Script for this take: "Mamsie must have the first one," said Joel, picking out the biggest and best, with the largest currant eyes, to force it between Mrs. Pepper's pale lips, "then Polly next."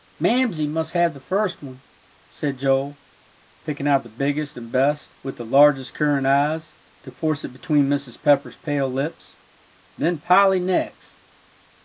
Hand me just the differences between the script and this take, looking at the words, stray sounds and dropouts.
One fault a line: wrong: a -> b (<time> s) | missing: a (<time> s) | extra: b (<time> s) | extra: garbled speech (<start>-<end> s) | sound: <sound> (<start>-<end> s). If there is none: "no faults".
no faults